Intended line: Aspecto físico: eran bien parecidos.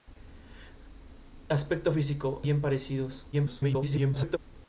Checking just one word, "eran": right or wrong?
wrong